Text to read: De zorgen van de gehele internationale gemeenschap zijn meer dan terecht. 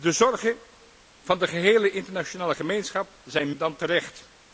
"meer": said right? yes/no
no